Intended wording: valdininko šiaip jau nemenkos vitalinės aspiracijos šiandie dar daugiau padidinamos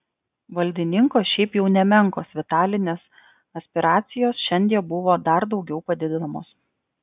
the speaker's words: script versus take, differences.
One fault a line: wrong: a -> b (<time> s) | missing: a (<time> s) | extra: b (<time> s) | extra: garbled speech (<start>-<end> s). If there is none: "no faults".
extra: buvo (5.0 s)